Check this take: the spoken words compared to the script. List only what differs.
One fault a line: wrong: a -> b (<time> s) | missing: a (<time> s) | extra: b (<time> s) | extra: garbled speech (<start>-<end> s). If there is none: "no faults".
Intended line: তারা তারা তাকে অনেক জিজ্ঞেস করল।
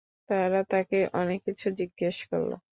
missing: তারা (0.6 s)
extra: কিছু (1.5 s)